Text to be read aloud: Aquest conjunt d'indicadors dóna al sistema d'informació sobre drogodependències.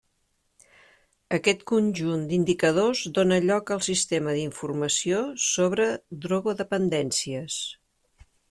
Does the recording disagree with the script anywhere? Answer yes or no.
yes